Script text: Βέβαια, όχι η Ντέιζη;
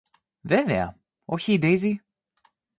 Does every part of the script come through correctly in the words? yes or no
yes